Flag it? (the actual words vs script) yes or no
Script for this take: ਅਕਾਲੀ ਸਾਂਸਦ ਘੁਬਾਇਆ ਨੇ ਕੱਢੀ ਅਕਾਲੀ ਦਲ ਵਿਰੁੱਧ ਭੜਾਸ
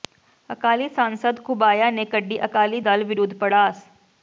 no